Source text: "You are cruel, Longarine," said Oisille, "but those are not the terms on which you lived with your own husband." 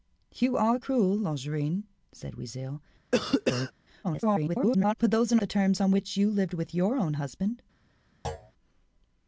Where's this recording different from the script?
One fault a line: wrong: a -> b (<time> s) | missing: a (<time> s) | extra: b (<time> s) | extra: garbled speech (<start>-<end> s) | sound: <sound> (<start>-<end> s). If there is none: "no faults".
sound: cough (3.1-3.7 s)
extra: garbled speech (4.0-4.9 s)
missing: not (5.4 s)
sound: thud (8.2-8.5 s)